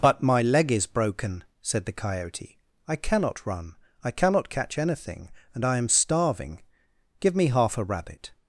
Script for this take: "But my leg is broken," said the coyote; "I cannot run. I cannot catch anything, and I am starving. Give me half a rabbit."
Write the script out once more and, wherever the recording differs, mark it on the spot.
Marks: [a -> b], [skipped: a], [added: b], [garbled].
"But my leg is broken," said the coyote; "I cannot run. I cannot catch anything, and I am starving. Give me half a rabbit."